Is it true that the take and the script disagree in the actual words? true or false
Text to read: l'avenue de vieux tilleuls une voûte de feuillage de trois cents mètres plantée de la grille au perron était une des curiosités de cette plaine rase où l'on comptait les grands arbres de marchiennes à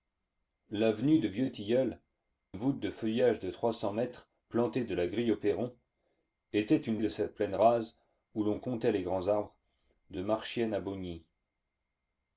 true